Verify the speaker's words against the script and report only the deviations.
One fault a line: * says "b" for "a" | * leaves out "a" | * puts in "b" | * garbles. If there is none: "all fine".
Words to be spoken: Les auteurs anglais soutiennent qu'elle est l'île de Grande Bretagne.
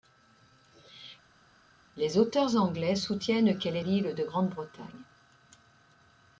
all fine